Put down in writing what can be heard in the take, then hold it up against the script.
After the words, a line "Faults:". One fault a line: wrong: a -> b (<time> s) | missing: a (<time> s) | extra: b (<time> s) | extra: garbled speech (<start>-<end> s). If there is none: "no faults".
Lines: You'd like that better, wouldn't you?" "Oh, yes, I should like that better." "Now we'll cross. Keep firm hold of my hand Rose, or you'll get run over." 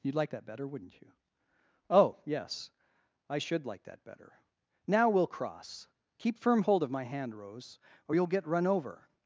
You'd like that better, wouldn't you?" "Oh, yes, I should like that better." "Now we'll cross. Keep firm hold of my hand Rose, or you'll get run over."
Faults:
no faults